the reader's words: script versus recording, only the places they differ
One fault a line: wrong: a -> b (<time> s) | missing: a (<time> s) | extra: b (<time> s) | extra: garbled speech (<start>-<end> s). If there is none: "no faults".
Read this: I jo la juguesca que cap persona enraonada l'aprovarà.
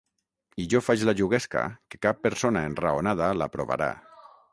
extra: faig (0.8 s)